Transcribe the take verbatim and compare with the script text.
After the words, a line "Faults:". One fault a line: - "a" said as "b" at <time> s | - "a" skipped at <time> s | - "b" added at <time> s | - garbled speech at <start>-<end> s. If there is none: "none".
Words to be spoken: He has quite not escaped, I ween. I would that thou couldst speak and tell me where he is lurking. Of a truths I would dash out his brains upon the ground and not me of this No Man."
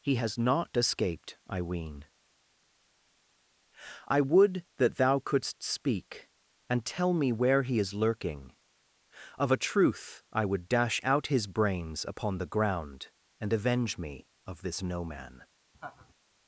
He has not escaped, I ween. I would that thou couldst speak and tell me where he is lurking. Of a truth I would dash out his brains upon the ground and avenge me of this No Man."
Faults:
- "quite" skipped at 0.4 s
- "truths" said as "truth" at 9.6 s
- "not" said as "avenge" at 13.5 s